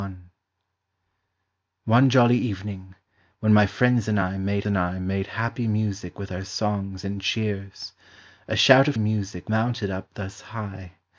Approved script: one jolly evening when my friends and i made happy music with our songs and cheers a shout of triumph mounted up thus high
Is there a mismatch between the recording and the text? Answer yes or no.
yes